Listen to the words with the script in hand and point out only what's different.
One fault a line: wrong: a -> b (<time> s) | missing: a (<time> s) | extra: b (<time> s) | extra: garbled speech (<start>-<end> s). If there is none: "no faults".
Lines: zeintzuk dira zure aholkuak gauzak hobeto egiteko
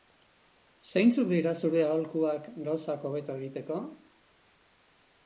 no faults